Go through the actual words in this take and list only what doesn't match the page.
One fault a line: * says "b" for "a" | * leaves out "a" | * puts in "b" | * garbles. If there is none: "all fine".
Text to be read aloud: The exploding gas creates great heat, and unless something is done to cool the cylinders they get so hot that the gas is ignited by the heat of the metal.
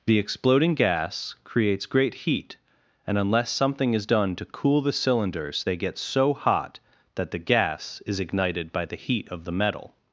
all fine